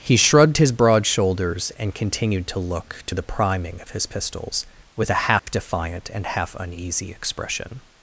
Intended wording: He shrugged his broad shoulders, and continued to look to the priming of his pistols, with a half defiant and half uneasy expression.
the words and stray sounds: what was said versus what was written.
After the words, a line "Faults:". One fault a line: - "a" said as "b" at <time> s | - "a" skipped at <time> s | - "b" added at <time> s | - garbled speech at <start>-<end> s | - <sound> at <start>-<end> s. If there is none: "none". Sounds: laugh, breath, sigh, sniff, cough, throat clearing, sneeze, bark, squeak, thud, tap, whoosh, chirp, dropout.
He shrugged his broad shoulders, and continued to look to the priming of his pistols, with a half defiant and half uneasy expression.
Faults:
- dropout at 5.4-5.5 s